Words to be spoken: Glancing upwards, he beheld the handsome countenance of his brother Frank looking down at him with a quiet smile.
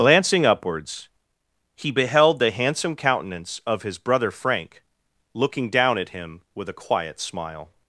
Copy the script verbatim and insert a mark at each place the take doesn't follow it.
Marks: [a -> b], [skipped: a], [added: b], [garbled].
Glancing upwards, he beheld the handsome countenance of his brother Frank looking down at him with a quiet smile.